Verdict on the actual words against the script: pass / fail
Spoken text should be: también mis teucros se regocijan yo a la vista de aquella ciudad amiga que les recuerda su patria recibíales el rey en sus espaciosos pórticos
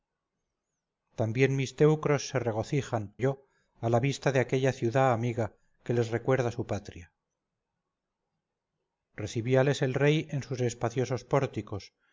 pass